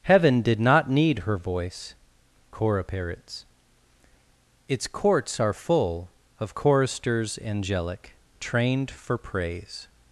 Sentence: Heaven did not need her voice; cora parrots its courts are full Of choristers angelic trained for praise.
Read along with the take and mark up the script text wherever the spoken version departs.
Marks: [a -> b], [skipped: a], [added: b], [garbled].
Heaven did not need her voice; cora parrots its courts are full Of choristers angelic trained for praise.